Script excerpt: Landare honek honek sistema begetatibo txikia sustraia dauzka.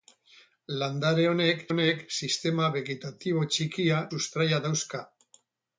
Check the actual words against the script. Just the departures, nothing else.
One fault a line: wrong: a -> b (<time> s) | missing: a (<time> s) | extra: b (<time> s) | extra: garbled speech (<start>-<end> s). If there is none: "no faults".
no faults